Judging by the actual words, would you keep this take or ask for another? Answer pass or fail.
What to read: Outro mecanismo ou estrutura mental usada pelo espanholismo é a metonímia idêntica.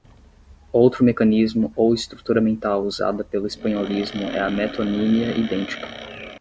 pass